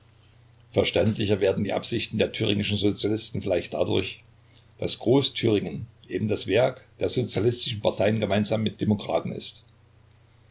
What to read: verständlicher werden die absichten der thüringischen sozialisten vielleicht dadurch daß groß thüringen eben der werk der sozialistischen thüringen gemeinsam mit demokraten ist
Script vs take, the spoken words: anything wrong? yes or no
yes